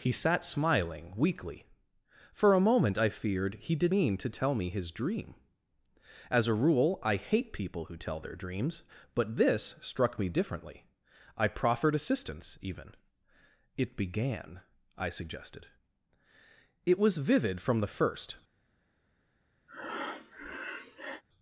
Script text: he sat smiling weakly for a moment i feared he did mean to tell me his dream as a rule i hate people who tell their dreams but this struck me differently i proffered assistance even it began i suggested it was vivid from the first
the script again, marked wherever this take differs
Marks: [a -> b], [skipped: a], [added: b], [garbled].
he sat smiling weakly for a moment i feared he did mean to tell me his dream as a rule i hate people who tell their dreams but this struck me differently i proffered assistance even it began i suggested it was vivid from the first